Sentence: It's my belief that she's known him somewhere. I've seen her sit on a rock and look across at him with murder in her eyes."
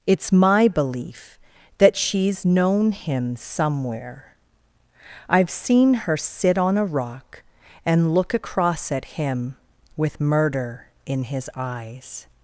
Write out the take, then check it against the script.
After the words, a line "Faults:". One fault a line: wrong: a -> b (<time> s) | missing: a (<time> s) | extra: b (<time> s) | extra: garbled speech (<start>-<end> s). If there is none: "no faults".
It's my belief that she's known him somewhere. I've seen her sit on a rock and look across at him with murder in his eyes."
Faults:
wrong: her -> his (11.2 s)